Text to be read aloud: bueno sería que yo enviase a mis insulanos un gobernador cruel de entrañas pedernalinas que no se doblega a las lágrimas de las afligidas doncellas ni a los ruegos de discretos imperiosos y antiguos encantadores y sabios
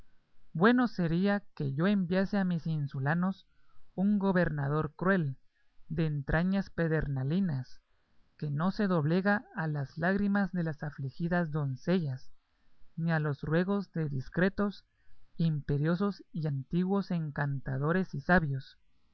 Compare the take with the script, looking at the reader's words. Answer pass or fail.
pass